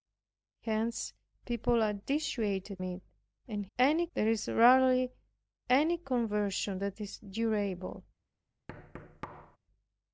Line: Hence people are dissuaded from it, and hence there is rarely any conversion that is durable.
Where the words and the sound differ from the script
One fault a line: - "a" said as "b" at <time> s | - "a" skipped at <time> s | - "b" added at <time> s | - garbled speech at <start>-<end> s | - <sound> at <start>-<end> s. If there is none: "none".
- "from" skipped at 2.8 s
- "hence" said as "any" at 3.8 s
- thud at 8.7-9.6 s